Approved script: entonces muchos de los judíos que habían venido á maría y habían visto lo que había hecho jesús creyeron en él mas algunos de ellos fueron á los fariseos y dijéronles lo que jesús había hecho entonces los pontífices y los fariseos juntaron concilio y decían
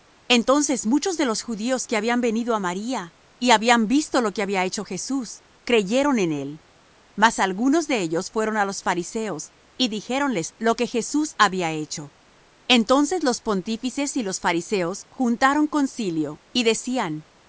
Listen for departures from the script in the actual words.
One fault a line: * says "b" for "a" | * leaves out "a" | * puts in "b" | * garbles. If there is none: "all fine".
all fine